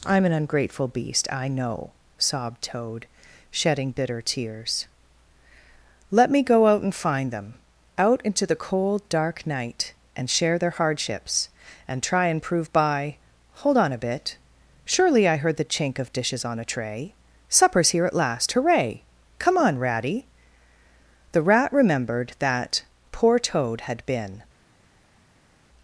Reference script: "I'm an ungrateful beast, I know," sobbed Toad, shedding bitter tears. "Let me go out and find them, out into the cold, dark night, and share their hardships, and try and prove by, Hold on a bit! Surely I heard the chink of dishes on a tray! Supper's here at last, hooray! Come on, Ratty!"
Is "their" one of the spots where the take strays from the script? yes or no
no